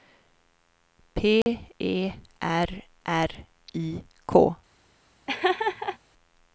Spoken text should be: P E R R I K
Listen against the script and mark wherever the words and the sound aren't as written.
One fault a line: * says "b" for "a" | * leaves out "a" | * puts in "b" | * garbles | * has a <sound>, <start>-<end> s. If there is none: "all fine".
* has a dropout, 1.4-1.5 s
* has a laugh, 5.3-6.0 s